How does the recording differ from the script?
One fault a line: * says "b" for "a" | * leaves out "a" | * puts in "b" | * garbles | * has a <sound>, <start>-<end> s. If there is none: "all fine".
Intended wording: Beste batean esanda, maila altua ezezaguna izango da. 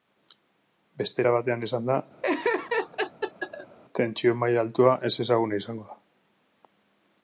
* puts in "era"
* has a laugh, 2.2-3.8 s
* puts in "tentsio"